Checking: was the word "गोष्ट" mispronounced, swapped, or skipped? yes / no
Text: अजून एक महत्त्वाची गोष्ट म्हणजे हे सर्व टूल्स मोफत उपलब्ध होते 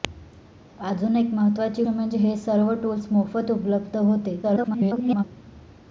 yes